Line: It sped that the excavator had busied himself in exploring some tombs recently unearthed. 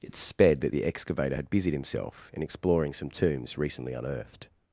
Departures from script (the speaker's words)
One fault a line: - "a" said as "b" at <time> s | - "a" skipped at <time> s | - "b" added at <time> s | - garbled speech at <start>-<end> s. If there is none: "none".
none